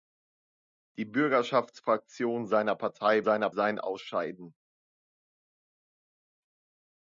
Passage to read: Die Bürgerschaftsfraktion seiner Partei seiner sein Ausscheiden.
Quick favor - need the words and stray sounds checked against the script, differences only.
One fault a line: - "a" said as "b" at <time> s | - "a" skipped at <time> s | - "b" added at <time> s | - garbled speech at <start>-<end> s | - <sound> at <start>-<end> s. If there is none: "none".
none